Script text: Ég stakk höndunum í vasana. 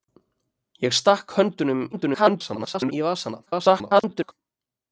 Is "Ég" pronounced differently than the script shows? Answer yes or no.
no